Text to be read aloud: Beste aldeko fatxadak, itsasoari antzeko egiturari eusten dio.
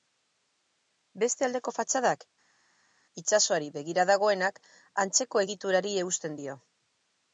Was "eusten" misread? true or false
false